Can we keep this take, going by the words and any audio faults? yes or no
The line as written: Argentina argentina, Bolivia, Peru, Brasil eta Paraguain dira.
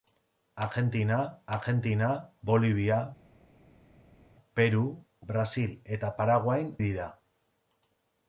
yes